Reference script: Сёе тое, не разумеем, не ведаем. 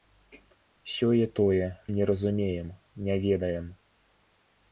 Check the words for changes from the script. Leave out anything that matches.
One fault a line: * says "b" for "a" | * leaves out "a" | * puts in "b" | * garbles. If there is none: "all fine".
all fine